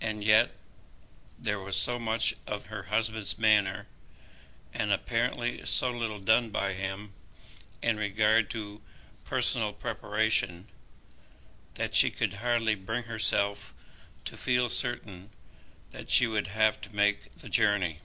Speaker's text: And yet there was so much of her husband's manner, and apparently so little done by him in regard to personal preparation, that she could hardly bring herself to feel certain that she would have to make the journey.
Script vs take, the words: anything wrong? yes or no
no